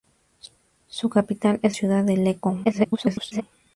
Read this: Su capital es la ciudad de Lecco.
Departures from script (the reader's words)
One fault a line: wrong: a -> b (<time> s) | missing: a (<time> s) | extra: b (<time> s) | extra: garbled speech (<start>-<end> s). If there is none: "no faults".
missing: la (1.8 s)
extra: garbled speech (2.6-3.4 s)